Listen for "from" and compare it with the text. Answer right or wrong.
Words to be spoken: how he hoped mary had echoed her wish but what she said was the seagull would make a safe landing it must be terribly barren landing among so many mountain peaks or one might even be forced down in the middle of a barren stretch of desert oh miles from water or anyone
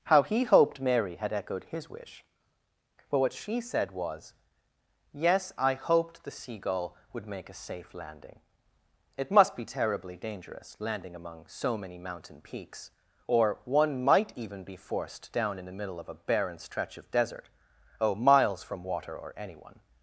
right